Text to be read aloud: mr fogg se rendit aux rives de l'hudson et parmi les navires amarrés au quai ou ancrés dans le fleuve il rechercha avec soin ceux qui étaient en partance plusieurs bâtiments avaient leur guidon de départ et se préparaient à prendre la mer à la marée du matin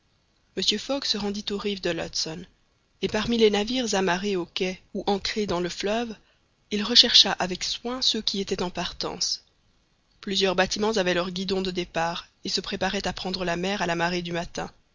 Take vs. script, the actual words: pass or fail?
pass